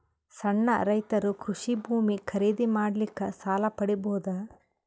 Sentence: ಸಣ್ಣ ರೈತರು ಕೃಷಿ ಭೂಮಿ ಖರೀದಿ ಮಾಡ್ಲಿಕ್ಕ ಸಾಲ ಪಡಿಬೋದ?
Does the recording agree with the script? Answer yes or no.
yes